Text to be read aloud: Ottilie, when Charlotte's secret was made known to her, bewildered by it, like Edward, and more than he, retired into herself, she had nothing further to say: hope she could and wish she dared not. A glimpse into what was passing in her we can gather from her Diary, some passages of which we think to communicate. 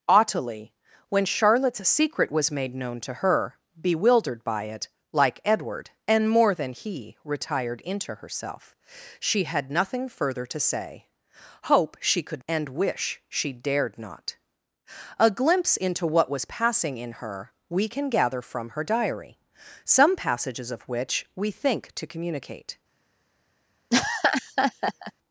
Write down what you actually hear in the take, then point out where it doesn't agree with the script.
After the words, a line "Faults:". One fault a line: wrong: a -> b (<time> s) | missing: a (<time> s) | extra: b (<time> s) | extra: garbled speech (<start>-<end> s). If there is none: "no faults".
Ottilie, when Charlotte's secret was made known to her, bewildered by it, like Edward, and more than he, retired into herself, she had nothing further to say: hope she could and wish she dared not. A glimpse into what was passing in her we can gather from her Diary, some passages of which we think to communicate.
Faults:
no faults